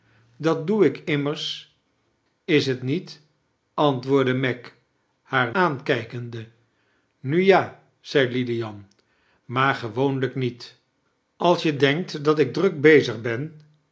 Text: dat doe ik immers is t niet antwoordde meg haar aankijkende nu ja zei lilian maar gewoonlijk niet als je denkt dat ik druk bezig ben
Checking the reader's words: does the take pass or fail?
pass